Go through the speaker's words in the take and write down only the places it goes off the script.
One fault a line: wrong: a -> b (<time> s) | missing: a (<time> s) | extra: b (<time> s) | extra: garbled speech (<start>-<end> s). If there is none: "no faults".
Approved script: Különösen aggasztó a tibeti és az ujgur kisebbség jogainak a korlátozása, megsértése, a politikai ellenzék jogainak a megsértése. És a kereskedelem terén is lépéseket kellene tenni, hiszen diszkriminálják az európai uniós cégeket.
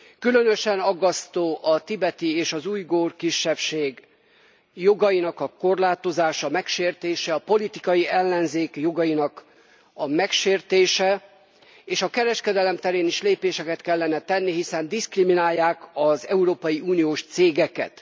no faults